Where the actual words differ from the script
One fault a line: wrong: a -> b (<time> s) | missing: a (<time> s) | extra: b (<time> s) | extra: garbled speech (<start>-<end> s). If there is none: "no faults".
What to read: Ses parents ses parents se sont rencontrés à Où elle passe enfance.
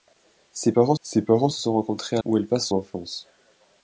no faults